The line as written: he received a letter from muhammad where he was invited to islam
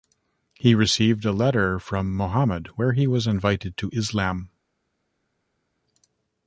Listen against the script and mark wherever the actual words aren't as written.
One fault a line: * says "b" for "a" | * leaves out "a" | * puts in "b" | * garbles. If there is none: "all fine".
all fine